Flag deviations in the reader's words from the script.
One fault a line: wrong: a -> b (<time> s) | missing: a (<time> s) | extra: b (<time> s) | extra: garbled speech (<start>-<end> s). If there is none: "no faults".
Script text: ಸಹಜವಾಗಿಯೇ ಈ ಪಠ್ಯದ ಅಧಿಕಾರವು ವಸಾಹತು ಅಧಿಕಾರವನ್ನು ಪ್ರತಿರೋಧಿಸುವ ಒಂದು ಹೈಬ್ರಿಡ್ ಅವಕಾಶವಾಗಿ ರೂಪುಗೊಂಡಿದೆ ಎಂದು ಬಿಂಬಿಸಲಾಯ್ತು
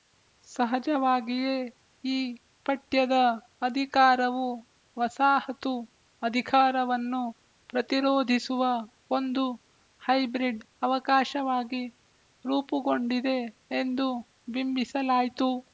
no faults